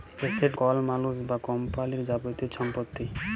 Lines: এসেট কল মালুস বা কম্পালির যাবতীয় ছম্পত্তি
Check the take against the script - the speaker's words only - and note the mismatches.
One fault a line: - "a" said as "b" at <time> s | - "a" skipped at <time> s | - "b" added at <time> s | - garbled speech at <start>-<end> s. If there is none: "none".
none